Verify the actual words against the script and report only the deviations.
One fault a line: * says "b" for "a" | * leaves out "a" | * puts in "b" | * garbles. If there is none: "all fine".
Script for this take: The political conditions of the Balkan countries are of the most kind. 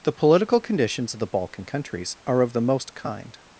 all fine